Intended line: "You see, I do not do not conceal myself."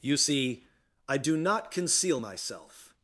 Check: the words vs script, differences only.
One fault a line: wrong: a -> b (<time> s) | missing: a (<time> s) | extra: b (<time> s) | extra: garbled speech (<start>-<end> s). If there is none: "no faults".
missing: do not (1.7 s)